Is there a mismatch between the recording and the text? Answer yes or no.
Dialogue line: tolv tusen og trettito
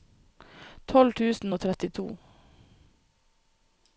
no